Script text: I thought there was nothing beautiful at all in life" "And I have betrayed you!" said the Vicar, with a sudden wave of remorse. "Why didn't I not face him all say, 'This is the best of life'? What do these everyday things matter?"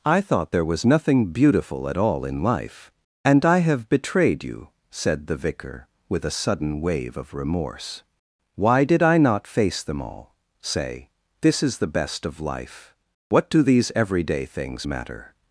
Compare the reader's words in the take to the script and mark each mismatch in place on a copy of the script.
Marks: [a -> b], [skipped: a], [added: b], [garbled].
I thought there was nothing beautiful at all in life" "And I have betrayed you!" said the Vicar, with a sudden wave of remorse. "Why [didn't -> did] I not face [him -> them] all say, 'This is the best of life'? What do these everyday things matter?"